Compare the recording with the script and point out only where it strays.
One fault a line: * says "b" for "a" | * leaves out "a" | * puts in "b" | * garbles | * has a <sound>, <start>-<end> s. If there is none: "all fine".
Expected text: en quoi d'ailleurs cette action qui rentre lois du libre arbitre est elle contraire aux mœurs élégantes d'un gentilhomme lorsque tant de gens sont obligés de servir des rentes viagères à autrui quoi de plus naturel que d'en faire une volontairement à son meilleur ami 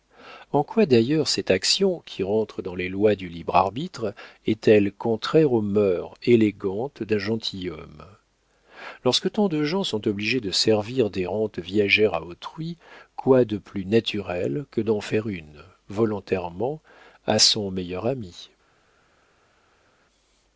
* puts in "dans les"